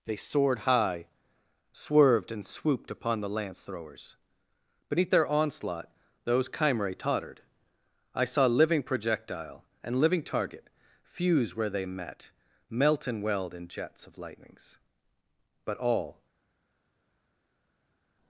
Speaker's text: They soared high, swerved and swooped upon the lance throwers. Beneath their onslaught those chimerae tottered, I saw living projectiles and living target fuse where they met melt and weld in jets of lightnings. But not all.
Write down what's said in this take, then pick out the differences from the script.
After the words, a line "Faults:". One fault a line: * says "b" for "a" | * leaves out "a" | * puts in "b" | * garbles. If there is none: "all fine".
They soared high, swerved and swooped upon the lance throwers. Beneath their onslaught those chimerae tottered, I saw living projectile and living target fuse where they met melt and weld in jets of lightnings. But all.
Faults:
* says "projectile" for "projectiles"
* leaves out "not"